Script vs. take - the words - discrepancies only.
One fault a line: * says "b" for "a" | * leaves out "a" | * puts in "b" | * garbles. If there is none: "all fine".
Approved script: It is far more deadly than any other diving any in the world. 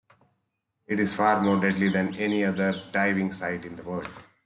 * says "site" for "any"